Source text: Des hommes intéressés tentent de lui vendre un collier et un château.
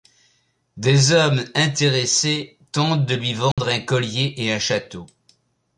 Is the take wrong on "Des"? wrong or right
right